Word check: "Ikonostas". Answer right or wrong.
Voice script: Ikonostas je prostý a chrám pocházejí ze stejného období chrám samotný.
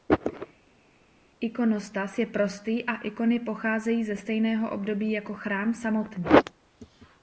right